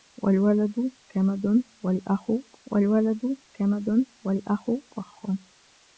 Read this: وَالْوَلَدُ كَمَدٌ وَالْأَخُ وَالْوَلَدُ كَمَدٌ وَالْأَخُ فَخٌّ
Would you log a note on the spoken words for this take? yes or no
no